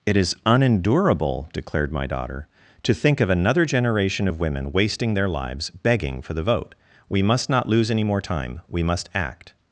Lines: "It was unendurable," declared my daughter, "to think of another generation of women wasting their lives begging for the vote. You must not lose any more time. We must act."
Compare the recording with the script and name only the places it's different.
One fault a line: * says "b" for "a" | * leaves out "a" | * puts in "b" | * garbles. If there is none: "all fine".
* says "is" for "was"
* says "We" for "You"